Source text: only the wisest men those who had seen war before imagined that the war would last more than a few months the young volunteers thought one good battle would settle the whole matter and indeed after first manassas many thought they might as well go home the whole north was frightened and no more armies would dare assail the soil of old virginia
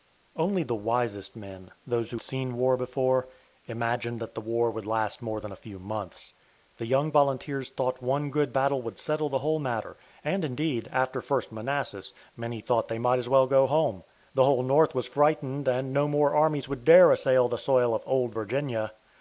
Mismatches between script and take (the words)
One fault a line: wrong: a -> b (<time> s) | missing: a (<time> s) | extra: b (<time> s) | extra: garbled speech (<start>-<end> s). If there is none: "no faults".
missing: had (2.2 s)